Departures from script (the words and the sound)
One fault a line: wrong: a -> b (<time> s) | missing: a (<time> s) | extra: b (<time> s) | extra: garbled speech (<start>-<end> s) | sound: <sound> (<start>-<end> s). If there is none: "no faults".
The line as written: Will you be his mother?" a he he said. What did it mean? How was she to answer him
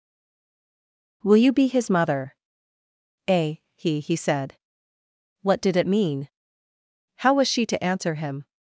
no faults